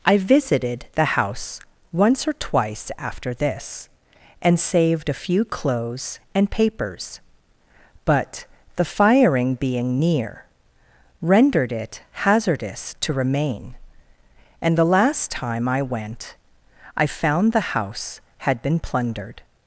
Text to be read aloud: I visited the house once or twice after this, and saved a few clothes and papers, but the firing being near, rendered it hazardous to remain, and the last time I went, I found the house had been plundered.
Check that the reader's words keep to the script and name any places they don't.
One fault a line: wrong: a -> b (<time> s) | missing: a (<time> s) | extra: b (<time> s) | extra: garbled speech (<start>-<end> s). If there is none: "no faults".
no faults